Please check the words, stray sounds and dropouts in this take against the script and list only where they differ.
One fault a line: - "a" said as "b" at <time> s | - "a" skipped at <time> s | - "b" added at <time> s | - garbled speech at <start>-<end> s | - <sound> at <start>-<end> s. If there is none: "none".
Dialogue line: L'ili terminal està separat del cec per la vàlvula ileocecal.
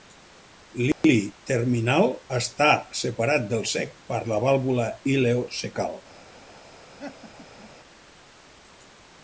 - dropout at 0.9-1.0 s
- laugh at 7.0-7.7 s